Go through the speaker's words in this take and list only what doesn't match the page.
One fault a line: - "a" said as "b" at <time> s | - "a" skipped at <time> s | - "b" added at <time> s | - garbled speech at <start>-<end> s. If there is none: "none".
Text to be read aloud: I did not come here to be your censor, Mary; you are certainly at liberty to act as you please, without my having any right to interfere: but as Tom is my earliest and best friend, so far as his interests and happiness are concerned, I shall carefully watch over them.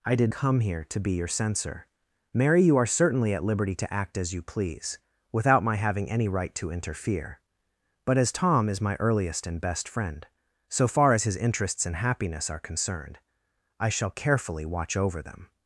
- "not" skipped at 0.3 s